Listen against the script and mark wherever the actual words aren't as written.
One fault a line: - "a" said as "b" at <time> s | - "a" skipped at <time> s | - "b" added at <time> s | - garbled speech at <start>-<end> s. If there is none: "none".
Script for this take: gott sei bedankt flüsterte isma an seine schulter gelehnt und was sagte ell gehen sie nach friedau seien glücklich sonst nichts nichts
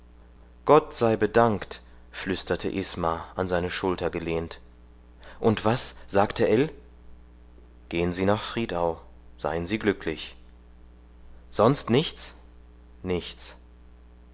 - "sie" added at 9.7 s